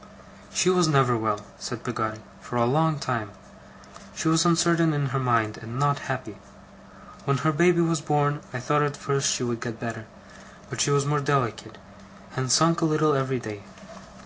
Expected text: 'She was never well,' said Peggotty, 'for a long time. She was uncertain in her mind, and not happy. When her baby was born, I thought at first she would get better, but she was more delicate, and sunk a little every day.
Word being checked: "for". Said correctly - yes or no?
yes